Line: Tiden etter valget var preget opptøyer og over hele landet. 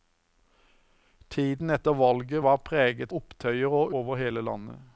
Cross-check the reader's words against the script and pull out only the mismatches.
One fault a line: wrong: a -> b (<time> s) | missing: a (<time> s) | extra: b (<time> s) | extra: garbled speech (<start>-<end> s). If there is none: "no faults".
no faults